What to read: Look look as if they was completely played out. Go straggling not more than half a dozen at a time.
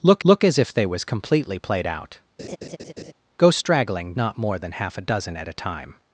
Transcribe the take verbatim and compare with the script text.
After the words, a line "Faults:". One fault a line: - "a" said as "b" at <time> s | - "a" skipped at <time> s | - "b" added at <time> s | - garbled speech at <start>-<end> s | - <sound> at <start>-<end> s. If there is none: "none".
Look look as if they was completely played out. Go straggling not more than half a dozen at a time.
Faults:
- laugh at 2.4-3.1 s